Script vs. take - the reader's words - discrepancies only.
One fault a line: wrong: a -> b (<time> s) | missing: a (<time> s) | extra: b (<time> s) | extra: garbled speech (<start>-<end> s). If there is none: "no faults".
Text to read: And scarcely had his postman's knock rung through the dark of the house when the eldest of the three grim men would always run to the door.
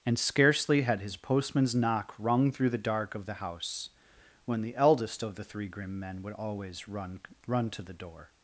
extra: run (7.5 s)